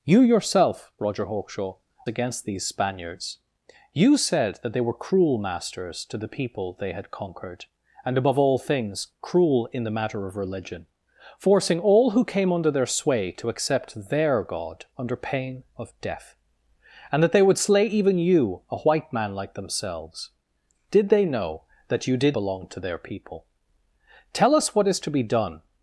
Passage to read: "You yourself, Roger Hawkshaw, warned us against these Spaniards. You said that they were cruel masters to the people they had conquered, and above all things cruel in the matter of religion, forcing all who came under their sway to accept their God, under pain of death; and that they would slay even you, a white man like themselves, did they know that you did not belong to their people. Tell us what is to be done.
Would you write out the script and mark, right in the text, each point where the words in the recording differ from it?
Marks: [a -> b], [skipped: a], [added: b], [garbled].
"You yourself, Roger Hawkshaw, [skipped: warned us] against these Spaniards. You said that they were cruel masters to the people they had conquered, and above all things cruel in the matter of religion, forcing all who came under their sway to accept their God, under pain of death; and that they would slay even you, a white man like themselves, did they know that you did [skipped: not] belong to their people. Tell us what is to be done.